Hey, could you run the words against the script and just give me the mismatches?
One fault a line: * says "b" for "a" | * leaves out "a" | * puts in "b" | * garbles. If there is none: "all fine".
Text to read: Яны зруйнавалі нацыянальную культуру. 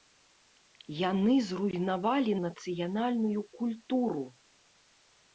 all fine